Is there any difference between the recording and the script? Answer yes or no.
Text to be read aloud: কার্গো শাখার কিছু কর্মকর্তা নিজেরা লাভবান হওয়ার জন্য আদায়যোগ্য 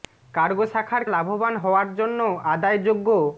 yes